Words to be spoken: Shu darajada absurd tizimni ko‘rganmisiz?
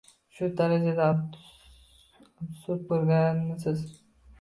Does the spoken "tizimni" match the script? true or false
false